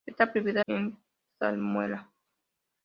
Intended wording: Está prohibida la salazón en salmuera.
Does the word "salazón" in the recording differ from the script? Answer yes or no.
yes